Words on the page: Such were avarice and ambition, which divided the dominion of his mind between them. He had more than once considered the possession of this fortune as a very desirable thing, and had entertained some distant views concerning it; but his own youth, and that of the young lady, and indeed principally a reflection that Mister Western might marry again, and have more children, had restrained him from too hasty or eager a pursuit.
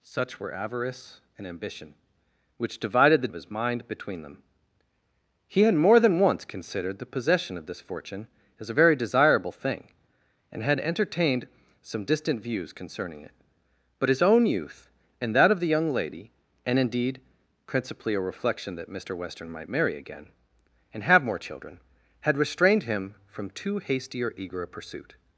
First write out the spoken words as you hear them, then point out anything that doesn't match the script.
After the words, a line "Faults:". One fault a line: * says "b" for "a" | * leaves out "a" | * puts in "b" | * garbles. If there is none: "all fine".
Such were avarice and ambition, which divided the of his mind between them. He had more than once considered the possession of this fortune as a very desirable thing, and had entertained some distant views concerning it; but his own youth, and that of the young lady, and indeed principally a reflection that Mister Western might marry again, and have more children, had restrained him from too hasty or eager a pursuit.
Faults:
* leaves out "dominion"